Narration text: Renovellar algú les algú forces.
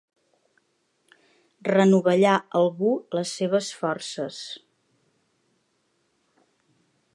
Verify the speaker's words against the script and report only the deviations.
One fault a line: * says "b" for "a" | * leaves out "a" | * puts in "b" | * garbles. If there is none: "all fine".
* says "seves" for "algú"